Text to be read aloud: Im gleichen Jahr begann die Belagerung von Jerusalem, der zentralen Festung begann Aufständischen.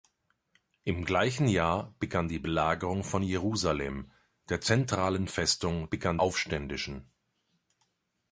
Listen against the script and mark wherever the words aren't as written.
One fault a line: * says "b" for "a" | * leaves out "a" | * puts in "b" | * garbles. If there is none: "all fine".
all fine